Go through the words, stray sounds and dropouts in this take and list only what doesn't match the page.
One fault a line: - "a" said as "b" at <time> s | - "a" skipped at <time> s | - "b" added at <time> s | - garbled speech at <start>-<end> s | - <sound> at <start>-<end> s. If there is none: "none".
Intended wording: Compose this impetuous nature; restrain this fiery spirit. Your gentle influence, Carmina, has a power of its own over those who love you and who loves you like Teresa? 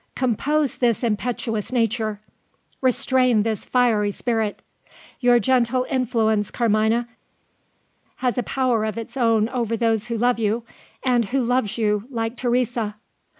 none